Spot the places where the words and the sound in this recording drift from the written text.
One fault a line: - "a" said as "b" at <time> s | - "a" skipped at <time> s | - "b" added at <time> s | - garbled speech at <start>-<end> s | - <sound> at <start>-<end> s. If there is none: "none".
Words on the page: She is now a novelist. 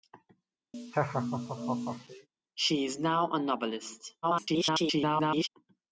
- laugh at 0.7-2.3 s
- garbled speech at 4.2-5.5 s